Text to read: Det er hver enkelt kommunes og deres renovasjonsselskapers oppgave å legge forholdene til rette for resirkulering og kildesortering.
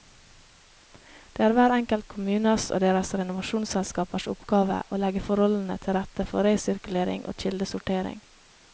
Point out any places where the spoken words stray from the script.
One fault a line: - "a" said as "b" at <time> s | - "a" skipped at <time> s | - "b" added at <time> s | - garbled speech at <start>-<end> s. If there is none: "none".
none